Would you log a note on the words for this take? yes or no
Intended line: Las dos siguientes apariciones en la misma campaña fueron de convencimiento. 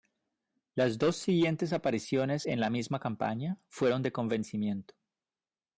no